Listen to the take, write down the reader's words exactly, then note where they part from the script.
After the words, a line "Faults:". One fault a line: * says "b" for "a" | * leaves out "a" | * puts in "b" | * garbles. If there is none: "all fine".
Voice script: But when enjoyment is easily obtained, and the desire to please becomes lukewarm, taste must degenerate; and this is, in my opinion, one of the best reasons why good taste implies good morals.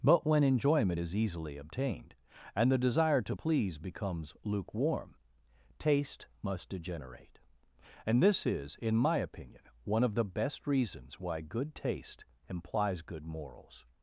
But when enjoyment is easily obtained, and the desire to please becomes lukewarm, taste must degenerate; and this is, in my opinion, one of the best reasons why good taste implies good morals.
Faults:
all fine